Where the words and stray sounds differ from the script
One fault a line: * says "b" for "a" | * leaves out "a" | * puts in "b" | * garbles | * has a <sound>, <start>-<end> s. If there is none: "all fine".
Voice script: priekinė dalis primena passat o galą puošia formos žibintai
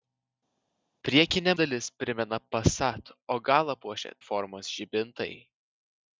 all fine